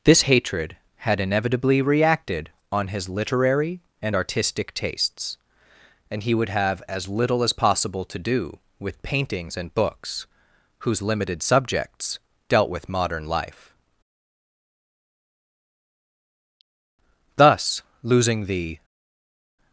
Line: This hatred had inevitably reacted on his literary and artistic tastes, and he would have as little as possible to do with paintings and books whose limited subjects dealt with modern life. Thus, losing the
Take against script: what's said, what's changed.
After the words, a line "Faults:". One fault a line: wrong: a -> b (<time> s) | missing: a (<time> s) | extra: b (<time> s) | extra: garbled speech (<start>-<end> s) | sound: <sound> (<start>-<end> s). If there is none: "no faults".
This hatred had inevitably reacted on his literary and artistic tastes, and he would have as little as possible to do with paintings and books whose limited subjects dealt with modern life. Thus, losing the
Faults:
no faults